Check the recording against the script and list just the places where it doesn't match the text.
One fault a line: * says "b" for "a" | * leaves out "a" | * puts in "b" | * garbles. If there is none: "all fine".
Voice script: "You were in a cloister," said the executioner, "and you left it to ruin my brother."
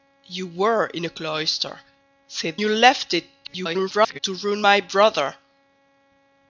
* leaves out "the executioner and"
* garbles